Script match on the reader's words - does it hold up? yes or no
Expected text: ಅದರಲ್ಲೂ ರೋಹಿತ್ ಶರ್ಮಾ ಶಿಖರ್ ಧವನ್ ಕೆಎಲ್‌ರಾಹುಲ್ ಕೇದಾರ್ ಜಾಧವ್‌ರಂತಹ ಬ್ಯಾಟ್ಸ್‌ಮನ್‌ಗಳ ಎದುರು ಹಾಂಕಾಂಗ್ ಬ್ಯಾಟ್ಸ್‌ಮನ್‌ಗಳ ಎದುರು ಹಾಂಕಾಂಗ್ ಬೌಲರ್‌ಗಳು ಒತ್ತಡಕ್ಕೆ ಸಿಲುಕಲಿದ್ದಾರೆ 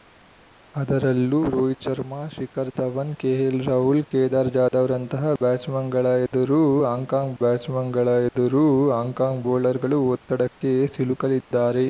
yes